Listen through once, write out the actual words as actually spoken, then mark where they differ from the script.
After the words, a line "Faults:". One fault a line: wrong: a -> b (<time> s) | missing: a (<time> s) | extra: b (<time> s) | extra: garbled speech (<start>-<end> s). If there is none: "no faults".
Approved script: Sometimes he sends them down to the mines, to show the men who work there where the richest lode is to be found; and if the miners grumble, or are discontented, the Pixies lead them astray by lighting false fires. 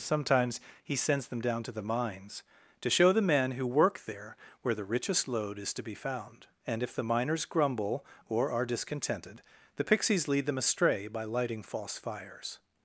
Sometimes he sends them down to the mines, to show the men who work there where the richest lode is to be found; and if the miners grumble, or are discontented, the Pixies lead them astray by lighting false fires.
Faults:
no faults